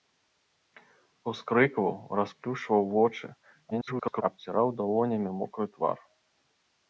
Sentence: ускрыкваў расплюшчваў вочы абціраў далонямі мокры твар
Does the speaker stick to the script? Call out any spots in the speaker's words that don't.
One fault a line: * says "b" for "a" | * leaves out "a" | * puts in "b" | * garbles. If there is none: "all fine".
* garbles